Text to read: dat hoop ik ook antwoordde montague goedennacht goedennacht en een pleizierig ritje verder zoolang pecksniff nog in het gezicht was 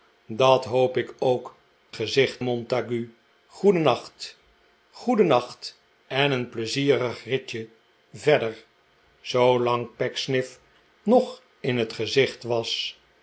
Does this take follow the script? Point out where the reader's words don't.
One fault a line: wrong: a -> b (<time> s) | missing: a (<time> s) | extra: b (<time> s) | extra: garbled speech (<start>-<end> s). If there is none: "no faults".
wrong: antwoordde -> gezicht (1.9 s)